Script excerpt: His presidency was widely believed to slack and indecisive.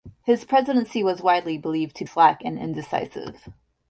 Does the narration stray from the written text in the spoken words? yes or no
no